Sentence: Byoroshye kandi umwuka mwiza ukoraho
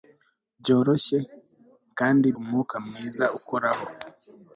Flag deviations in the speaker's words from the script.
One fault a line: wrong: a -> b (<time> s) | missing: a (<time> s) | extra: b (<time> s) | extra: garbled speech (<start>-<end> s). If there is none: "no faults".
no faults